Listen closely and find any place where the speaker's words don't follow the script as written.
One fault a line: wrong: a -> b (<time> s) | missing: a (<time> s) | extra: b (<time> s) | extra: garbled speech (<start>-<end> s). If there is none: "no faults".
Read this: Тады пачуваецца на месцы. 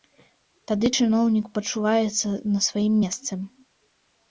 extra: чыноўнік (1.0 s)
extra: сваім (2.7 s)